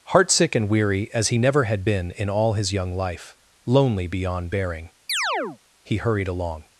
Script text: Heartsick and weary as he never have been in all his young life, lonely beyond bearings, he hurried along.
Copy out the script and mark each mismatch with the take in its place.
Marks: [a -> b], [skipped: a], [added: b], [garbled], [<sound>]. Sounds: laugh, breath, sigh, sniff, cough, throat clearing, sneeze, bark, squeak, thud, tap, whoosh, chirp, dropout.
Heartsick and weary as he never [have -> had] been in all his young life, lonely beyond [bearings, -> bearing] [chirp] he hurried along.